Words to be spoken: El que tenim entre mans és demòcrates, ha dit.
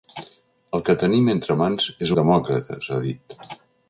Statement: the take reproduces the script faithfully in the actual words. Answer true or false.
true